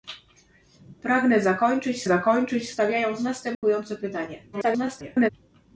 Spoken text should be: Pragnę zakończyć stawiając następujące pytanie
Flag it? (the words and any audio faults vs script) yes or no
yes